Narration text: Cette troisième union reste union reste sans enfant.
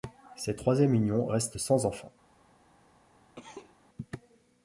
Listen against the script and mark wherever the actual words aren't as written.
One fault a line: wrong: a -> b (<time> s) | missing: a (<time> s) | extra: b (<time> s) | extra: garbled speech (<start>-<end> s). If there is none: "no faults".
missing: union reste (1.6 s)